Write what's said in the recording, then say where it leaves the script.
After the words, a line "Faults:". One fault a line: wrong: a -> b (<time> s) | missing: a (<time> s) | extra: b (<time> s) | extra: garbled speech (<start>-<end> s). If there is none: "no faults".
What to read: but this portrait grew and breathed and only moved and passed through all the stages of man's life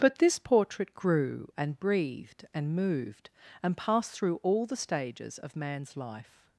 but this portrait grew and breathed and moved and passed through all the stages of man's life
Faults:
missing: only (2.7 s)